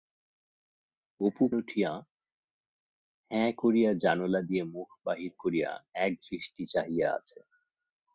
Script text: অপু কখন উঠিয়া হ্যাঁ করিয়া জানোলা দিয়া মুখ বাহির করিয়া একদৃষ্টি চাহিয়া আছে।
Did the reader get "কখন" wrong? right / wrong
wrong